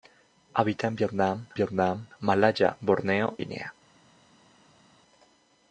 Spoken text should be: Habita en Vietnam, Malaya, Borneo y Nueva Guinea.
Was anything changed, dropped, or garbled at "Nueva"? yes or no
yes